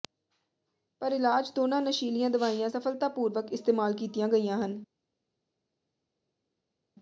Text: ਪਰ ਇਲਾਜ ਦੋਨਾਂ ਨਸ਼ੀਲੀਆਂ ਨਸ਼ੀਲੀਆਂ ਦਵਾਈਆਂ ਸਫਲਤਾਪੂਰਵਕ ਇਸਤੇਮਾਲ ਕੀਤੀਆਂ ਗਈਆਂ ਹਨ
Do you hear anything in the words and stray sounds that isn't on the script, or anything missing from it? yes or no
yes